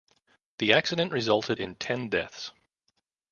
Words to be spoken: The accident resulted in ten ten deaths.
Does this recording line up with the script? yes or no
no